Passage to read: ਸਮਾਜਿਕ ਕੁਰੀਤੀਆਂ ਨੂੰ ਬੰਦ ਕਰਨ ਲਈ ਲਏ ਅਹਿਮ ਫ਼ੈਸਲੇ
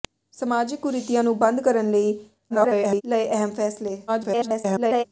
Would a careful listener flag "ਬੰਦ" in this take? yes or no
no